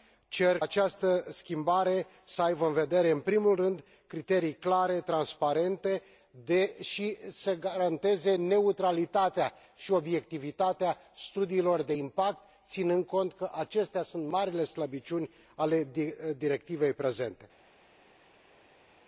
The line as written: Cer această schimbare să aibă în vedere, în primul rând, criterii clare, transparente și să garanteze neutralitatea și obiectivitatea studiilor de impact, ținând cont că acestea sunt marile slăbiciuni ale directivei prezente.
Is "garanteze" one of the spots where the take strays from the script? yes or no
no